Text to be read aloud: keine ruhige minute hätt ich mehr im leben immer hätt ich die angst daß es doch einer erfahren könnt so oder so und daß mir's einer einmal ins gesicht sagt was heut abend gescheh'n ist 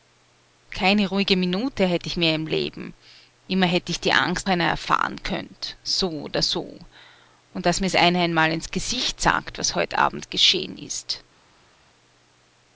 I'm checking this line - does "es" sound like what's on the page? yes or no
no